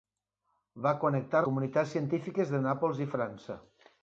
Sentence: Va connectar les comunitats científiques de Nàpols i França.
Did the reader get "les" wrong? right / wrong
wrong